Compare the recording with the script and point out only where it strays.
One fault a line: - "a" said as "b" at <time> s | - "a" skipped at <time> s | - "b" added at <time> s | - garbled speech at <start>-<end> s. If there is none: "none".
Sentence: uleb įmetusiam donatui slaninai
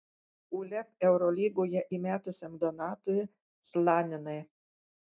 - "eurolygoje" added at 1.1 s